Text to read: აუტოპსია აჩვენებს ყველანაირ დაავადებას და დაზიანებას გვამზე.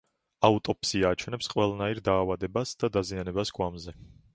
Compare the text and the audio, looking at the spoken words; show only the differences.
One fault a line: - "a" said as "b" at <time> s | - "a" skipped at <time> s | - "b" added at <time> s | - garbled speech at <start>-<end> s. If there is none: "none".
none